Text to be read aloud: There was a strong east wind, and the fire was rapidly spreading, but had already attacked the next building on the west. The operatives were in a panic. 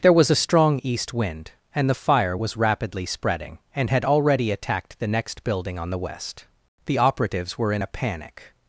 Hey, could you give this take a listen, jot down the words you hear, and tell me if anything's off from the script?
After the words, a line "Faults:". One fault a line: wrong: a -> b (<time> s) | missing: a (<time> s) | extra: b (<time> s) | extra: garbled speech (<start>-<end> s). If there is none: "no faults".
There was a strong east wind, and the fire was rapidly spreading, and had already attacked the next building on the west. The operatives were in a panic.
Faults:
wrong: but -> and (3.7 s)